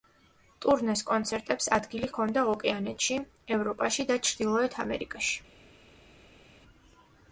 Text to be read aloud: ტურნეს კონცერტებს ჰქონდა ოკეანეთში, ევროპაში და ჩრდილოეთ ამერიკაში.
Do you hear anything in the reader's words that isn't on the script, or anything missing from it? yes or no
yes